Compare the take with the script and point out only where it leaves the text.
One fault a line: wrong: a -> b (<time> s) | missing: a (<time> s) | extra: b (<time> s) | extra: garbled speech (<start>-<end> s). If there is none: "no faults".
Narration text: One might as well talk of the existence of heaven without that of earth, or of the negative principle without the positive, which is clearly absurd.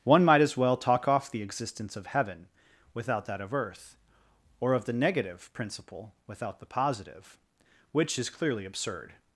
wrong: of -> off (1.1 s)